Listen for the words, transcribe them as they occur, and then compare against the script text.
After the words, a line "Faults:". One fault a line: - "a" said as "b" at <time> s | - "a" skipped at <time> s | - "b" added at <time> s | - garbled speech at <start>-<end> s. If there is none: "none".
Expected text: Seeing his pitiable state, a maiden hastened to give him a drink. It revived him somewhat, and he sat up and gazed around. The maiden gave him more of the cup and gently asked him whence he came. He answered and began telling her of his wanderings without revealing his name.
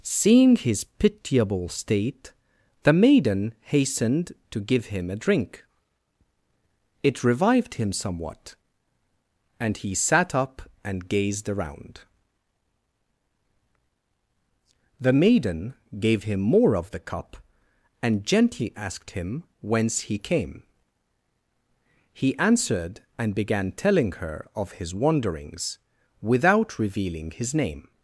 Seeing his pitiable state, the maiden hastened to give him a drink. It revived him somewhat, and he sat up and gazed around. The maiden gave him more of the cup and gently asked him whence he came. He answered and began telling her of his wanderings without revealing his name.
Faults:
- "a" said as "the" at 2.8 s